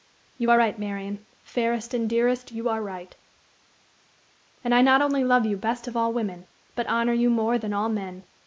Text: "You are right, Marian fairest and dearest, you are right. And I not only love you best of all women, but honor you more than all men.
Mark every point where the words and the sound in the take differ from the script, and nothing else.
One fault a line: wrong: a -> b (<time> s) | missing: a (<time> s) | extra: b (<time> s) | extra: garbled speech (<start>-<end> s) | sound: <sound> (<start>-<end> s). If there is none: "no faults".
no faults